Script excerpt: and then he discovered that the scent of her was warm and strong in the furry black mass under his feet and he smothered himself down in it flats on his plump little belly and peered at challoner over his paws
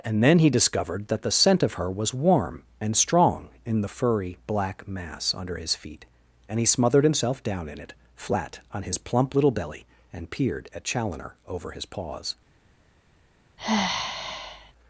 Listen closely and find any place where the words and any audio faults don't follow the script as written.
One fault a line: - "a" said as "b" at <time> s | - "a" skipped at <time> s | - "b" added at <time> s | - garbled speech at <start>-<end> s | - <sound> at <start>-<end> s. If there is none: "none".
- "flats" said as "flat" at 8.2 s
- sigh at 13.6-14.7 s